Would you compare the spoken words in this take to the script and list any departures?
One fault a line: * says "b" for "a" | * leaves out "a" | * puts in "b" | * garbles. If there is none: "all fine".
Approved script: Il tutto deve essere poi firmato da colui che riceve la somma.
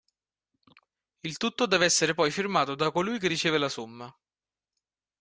all fine